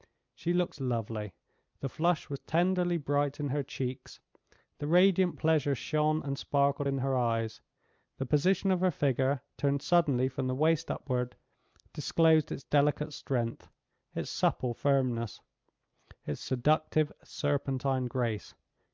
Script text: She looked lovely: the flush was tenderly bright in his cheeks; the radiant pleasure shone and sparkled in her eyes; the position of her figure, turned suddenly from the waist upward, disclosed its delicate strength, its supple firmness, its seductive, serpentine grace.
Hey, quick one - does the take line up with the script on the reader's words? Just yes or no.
no